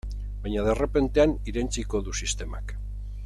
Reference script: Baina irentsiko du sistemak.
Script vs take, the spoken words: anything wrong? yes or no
yes